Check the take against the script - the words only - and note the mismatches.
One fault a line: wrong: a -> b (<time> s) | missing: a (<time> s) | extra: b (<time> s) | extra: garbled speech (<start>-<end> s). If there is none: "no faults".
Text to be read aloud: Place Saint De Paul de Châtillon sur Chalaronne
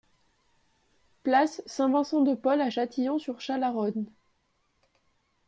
extra: Vincent (1.9 s)
wrong: de -> à (2.6 s)